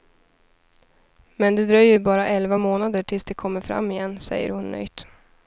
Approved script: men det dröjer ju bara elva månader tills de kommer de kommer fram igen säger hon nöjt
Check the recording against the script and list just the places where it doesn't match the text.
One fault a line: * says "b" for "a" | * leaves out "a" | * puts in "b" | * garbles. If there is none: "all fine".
* leaves out "de kommer"